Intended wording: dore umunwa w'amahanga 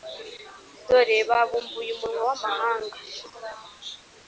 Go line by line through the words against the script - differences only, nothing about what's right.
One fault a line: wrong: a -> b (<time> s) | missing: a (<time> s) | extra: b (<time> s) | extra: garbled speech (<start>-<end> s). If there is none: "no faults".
extra: babumbuye (1.3 s)